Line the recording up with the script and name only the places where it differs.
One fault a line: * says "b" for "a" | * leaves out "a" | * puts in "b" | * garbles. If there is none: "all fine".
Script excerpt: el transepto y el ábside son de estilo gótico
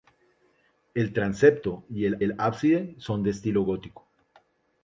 * puts in "el"